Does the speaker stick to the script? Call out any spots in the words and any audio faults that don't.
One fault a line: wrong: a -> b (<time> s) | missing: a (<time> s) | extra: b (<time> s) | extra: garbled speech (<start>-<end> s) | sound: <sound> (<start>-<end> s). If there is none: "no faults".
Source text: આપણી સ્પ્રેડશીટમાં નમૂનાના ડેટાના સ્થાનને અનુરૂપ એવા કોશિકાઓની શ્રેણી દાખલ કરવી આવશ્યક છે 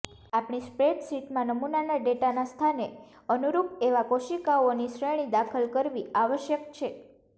no faults